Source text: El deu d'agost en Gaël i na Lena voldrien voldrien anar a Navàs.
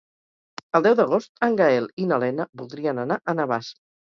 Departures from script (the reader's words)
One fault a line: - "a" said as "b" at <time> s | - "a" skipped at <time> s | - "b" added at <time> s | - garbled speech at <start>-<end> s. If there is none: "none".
- "voldrien" skipped at 3.0 s